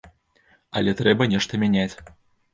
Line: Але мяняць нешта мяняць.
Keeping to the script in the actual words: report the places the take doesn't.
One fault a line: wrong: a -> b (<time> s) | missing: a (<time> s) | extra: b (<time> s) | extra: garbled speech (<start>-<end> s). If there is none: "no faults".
wrong: мяняць -> трэба (1.0 s)